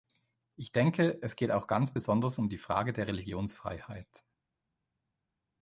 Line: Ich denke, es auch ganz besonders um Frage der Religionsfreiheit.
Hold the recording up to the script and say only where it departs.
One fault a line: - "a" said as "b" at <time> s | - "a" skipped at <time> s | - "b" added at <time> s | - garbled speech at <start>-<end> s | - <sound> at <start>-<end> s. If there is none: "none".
- "geht" added at 1.3 s
- "die" added at 2.5 s